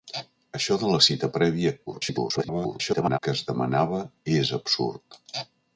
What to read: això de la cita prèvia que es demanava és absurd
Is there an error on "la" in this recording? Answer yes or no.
no